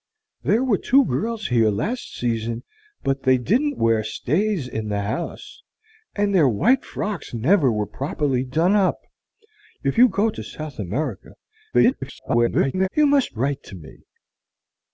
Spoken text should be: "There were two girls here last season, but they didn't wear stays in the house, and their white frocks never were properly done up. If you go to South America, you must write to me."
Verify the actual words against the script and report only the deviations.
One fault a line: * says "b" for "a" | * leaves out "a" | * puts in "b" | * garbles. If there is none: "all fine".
* garbles